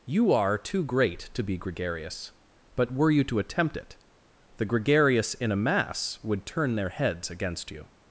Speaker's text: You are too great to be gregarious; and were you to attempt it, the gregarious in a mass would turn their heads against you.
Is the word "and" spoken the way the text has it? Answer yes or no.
no